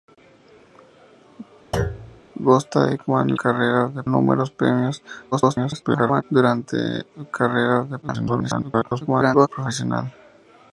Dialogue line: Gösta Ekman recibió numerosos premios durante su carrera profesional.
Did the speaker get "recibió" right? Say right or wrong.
wrong